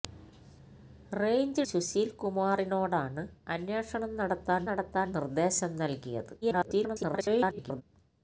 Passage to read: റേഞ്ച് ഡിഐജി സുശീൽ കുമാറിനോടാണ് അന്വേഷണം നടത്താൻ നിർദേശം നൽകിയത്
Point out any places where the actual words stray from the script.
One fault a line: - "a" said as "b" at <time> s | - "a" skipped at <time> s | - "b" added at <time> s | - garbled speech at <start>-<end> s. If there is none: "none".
- "ഡിഐജി" skipped at 1.6 s
- "നടത്താൻ" added at 4.6 s
- garbled speech at 6.4-7.8 s